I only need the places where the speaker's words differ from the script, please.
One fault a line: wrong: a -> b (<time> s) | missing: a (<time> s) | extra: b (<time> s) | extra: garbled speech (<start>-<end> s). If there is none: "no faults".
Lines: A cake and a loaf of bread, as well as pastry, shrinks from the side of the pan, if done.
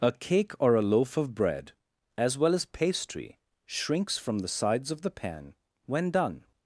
wrong: and -> or (0.6 s)
wrong: side -> sides (4.5 s)
wrong: if -> when (5.8 s)